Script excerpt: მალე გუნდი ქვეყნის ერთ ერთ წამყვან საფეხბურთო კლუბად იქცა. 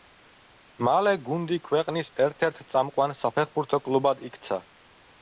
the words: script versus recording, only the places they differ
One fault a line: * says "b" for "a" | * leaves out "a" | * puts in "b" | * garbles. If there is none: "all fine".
all fine